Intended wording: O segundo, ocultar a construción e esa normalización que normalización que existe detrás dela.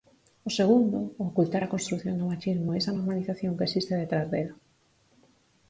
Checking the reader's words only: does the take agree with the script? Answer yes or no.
no